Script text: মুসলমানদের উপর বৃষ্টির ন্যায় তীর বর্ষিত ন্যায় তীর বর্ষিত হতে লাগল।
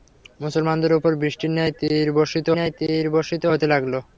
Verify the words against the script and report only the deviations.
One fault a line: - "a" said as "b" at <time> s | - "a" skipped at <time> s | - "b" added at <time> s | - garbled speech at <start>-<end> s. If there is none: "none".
none